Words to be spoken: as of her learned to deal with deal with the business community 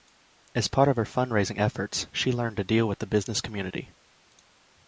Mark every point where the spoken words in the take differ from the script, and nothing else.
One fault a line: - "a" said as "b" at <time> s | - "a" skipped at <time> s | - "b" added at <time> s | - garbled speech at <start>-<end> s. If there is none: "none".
- "part" added at 0.7 s
- "fundraising efforts she" added at 1.1 s
- "deal with" skipped at 3.0 s